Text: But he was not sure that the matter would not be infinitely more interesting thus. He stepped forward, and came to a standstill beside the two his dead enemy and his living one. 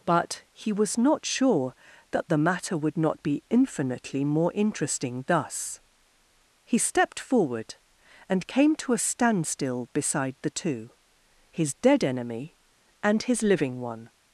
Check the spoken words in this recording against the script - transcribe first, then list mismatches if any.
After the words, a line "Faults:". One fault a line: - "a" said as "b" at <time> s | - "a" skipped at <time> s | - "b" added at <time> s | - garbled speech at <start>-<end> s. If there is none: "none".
But he was not sure that the matter would not be infinitely more interesting thus. He stepped forward, and came to a standstill beside the two his dead enemy and his living one.
Faults:
none